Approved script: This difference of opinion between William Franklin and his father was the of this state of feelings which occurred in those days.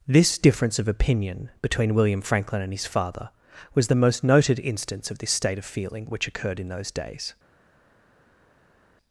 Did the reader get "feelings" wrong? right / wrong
wrong